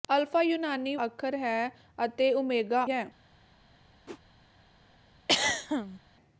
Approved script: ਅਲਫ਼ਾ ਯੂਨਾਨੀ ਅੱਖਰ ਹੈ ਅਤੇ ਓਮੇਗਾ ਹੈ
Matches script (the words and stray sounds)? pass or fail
fail